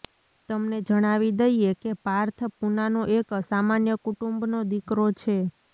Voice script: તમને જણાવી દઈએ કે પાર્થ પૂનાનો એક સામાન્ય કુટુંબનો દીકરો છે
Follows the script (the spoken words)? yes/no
yes